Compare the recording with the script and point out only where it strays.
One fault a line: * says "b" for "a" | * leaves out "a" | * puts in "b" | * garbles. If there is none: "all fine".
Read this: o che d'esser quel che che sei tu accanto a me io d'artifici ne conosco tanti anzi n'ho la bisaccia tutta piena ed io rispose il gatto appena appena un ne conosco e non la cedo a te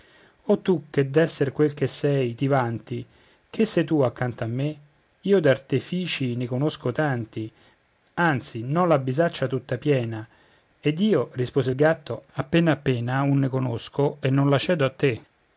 * puts in "tu"
* puts in "sei ti vanti"